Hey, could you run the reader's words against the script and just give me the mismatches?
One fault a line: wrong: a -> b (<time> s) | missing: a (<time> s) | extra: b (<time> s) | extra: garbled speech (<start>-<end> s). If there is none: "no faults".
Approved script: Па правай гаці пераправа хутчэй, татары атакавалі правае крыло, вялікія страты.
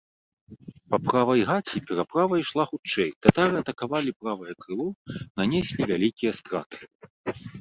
extra: ішла (2.4 s)
extra: нанеслі (5.4 s)